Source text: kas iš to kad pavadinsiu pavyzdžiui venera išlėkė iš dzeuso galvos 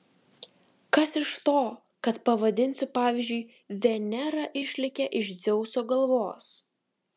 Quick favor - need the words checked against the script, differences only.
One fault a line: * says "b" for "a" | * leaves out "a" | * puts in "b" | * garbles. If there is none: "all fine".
all fine